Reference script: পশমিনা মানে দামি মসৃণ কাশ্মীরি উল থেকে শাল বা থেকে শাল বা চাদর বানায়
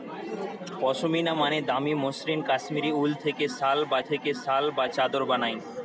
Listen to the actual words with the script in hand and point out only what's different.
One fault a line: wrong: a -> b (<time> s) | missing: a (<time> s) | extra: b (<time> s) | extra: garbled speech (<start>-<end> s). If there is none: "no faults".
no faults